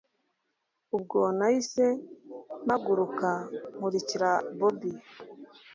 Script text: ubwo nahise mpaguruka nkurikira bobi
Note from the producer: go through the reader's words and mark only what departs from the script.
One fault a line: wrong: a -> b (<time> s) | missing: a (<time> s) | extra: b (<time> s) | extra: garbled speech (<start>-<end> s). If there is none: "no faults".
no faults